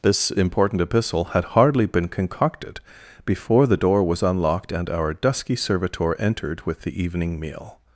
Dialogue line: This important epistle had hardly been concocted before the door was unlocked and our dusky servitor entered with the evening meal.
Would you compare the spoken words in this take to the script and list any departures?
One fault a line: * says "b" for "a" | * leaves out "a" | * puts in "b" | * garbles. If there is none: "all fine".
all fine